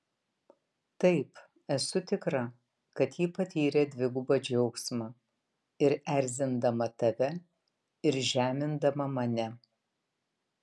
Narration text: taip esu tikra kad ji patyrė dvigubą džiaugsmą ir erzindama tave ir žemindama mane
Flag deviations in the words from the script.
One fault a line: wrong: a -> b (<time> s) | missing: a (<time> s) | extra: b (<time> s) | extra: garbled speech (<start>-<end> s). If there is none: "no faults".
no faults